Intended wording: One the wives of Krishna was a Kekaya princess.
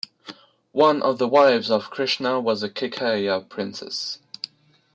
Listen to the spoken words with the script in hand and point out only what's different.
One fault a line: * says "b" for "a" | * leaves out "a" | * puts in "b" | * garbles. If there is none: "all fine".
* puts in "of"